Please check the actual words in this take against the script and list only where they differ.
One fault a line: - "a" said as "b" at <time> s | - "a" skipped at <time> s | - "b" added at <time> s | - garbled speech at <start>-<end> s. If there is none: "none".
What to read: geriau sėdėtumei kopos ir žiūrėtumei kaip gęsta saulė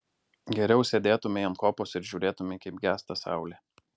- "ant" added at 1.5 s